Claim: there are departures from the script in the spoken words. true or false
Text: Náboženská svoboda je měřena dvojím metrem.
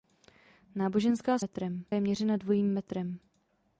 true